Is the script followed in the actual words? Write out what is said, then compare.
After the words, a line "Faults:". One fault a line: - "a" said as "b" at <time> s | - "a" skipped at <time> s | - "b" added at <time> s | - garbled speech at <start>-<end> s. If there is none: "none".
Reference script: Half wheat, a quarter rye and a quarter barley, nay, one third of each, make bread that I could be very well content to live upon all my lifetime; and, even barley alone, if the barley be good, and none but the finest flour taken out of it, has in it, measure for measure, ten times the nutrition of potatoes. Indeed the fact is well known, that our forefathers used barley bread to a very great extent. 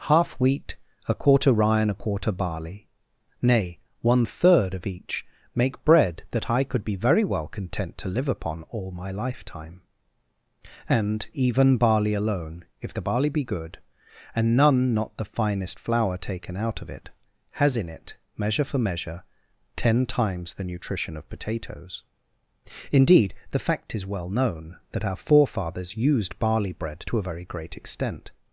Half wheat, a quarter rye and a quarter barley, nay, one third of each, make bread that I could be very well content to live upon all my lifetime; and, even barley alone, if the barley be good, and none not the finest flour taken out of it, has in it, measure for measure, ten times the nutrition of potatoes. Indeed the fact is well known, that our forefathers used barley bread to a very great extent.
Faults:
- "but" said as "not" at 14.9 s